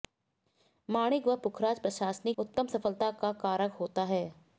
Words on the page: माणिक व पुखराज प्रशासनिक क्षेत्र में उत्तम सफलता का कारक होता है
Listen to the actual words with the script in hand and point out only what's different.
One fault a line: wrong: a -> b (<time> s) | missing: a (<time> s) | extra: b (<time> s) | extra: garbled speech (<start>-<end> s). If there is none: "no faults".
missing: क्षेत्र में (2.4 s)